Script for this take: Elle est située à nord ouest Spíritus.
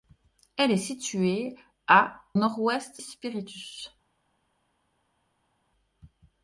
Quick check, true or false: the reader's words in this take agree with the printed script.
true